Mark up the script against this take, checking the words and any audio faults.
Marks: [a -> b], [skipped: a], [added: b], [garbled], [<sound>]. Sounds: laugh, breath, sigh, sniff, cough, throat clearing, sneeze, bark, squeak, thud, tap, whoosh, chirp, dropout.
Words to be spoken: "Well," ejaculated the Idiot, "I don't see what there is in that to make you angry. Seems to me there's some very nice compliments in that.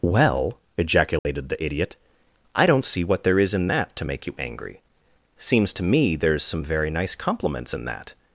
"Well," ejaculated [dropout] the Idiot, "I don't see what there is in that to make you angry. Seems to me there's some very nice compliments in that.